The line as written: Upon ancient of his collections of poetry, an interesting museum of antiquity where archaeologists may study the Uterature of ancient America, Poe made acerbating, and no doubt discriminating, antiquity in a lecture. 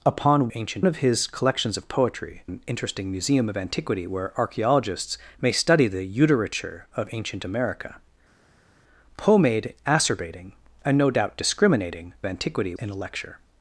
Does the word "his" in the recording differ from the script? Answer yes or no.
no